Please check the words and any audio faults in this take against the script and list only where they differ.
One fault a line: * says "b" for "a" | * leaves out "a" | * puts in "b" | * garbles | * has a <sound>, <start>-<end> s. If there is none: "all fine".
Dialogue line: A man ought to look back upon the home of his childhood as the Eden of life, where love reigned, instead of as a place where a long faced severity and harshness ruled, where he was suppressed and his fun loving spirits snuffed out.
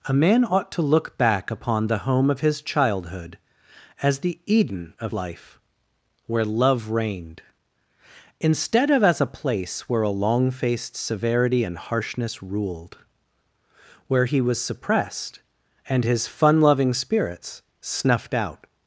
all fine